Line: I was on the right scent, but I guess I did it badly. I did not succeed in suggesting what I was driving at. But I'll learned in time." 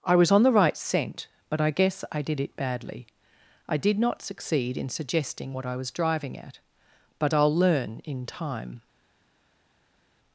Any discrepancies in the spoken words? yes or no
yes